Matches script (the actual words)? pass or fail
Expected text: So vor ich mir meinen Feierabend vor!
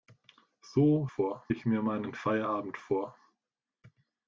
pass